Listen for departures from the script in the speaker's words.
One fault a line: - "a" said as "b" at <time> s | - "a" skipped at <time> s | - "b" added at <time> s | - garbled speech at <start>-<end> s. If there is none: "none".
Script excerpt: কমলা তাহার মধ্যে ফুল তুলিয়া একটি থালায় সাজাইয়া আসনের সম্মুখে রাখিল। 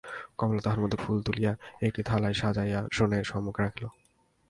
none